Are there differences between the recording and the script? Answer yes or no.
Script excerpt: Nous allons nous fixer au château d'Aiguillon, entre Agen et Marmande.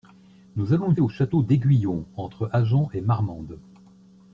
yes